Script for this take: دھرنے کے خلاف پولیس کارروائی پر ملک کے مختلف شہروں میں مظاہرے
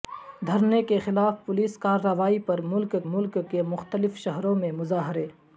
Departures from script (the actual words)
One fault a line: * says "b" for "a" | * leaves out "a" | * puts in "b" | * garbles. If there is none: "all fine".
* puts in "ملک"